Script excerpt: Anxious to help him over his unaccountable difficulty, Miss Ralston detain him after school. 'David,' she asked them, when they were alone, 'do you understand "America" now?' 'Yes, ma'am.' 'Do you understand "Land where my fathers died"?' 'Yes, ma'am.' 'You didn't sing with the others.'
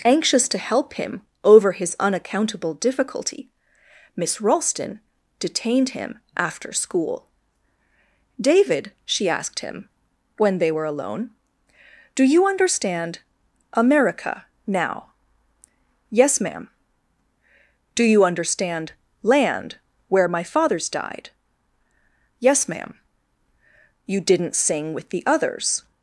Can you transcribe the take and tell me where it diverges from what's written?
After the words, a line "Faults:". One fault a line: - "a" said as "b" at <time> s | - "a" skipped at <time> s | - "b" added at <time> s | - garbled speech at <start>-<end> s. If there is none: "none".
Anxious to help him over his unaccountable difficulty, Miss Ralston detained him after school. 'David,' she asked him, when they were alone, 'do you understand "America" now?' 'Yes, ma'am.' 'Do you understand "Land where my fathers died"?' 'Yes, ma'am.' 'You didn't sing with the others.'
Faults:
- "detain" said as "detained" at 5.4 s
- "them" said as "him" at 9.6 s